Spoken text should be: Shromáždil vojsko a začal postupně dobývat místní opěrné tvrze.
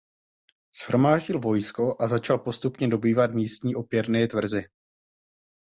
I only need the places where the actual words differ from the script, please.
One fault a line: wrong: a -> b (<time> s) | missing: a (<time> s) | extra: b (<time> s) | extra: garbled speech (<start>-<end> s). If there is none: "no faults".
no faults